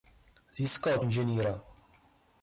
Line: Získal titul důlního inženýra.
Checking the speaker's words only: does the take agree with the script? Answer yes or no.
no